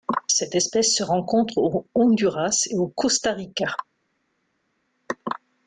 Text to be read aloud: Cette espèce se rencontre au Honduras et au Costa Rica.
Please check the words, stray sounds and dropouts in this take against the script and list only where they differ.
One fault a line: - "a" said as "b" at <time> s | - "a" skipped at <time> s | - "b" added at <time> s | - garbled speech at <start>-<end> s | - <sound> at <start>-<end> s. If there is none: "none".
none